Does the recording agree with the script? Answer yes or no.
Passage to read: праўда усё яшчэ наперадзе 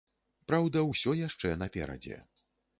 yes